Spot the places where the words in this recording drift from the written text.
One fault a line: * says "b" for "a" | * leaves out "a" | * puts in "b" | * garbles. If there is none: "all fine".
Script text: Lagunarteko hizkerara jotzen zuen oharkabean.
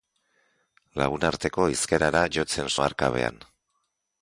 * leaves out "zuen"